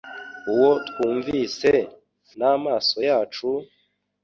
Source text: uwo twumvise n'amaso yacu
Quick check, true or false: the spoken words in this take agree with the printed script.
true